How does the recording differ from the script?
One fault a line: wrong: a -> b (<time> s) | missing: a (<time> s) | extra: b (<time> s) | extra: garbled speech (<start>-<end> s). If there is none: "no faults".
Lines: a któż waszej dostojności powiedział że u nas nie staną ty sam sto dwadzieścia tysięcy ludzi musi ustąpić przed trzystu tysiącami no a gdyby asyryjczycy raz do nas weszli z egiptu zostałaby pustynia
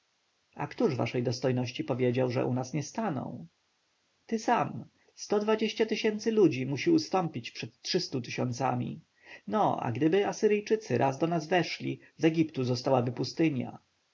no faults